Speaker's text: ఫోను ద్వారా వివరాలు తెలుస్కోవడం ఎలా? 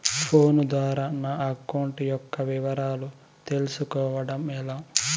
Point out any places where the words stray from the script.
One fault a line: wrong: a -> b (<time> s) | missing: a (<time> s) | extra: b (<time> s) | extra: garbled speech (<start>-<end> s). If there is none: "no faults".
extra: నా అకౌంట్ యొక్క (1.2 s)